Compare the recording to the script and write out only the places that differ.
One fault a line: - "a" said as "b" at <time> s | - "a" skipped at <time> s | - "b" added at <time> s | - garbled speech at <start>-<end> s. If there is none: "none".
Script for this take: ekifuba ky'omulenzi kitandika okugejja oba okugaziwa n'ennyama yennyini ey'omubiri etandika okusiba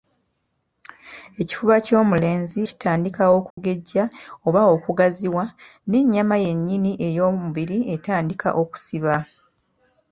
none